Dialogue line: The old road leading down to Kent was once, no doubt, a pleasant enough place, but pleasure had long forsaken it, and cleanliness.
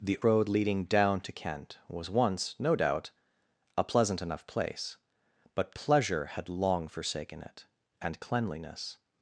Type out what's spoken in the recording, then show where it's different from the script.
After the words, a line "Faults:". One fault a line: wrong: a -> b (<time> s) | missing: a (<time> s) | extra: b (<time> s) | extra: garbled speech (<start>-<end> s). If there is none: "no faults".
The road leading down to Kent was once, no doubt, a pleasant enough place, but pleasure had long forsaken it, and cleanliness.
Faults:
missing: old (0.2 s)